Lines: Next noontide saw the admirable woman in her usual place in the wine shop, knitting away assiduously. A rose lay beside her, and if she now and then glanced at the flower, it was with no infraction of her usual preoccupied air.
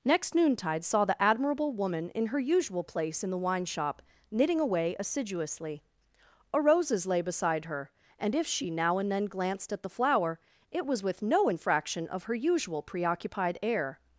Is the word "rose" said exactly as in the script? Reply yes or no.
no